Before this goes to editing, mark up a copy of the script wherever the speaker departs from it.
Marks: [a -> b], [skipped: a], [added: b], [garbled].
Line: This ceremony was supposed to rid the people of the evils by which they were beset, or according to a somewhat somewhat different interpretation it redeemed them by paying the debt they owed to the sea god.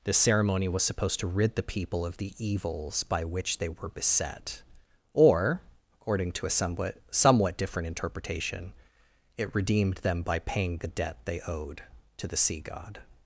This ceremony was supposed to rid the people of the evils by which they were beset, or according to a somewhat somewhat different interpretation it redeemed them by paying the debt they owed to the sea god.